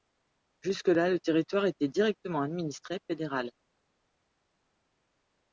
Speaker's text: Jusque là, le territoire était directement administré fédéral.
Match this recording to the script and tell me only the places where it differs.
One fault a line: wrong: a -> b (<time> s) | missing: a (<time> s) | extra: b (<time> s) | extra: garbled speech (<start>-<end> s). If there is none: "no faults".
no faults